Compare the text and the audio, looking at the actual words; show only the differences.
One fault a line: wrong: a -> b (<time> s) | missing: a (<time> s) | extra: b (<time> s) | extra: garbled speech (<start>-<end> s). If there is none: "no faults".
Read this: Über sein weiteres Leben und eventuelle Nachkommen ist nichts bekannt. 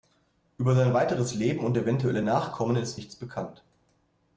no faults